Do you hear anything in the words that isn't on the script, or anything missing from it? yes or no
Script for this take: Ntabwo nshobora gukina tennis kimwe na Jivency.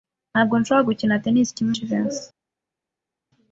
yes